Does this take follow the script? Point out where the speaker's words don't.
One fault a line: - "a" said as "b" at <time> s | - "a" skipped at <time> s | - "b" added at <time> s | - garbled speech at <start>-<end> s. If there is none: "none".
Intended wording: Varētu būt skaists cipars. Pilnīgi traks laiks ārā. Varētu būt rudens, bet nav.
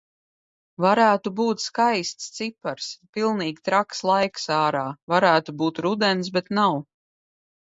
none